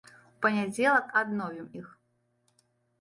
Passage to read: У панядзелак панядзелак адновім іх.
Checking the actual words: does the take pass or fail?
fail